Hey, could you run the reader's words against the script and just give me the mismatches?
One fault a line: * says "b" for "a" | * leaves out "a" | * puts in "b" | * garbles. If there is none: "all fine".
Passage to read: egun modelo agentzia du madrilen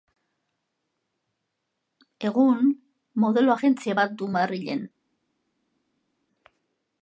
* puts in "bat"